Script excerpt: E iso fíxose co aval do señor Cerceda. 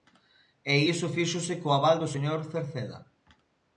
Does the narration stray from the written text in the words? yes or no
no